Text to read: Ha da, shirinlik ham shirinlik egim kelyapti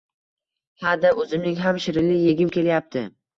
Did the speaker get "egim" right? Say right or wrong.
right